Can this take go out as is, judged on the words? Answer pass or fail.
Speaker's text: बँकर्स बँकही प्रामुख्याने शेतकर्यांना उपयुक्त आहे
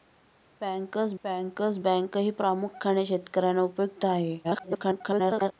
fail